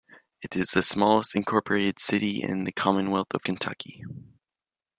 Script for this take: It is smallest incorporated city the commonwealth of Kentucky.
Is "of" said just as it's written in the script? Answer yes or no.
yes